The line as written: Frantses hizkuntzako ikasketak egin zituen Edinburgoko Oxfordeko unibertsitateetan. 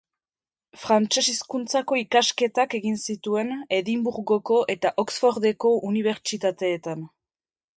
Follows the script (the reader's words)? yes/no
no